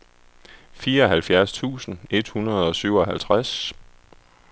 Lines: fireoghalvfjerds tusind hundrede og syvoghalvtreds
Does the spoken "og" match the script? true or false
true